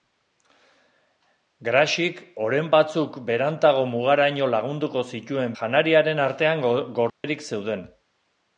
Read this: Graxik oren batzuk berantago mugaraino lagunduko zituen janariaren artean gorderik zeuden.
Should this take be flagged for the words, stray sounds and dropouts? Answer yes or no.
yes